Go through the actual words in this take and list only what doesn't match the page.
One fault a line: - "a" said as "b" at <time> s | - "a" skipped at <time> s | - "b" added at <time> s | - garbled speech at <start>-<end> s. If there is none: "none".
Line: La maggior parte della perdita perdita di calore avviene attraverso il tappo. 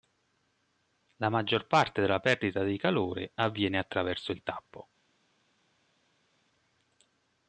- "perdita" skipped at 2.6 s